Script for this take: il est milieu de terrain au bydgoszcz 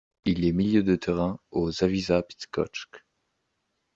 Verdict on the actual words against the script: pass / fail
fail